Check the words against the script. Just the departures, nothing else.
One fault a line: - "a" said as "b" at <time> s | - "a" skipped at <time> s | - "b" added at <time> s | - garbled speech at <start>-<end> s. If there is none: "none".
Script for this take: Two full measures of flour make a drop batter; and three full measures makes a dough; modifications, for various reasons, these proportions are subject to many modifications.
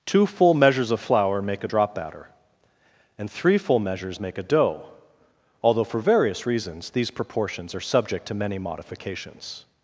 - "makes" said as "make" at 4.2 s
- "modifications" said as "although" at 5.6 s